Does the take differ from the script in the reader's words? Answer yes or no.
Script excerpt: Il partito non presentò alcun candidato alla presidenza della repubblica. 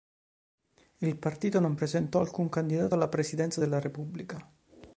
no